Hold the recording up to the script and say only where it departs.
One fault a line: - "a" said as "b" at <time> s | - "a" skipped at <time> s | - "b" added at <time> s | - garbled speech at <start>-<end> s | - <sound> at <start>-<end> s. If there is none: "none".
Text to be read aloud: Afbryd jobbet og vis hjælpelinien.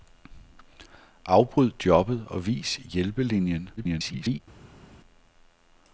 - garbled speech at 3.8-4.4 s